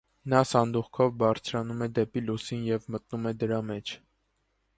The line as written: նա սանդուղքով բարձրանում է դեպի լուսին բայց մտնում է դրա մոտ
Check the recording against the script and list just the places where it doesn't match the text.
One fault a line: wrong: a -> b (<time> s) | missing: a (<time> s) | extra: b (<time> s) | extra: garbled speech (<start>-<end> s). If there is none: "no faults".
wrong: բայց -> և (2.7 s)
wrong: մոտ -> մեջ (3.7 s)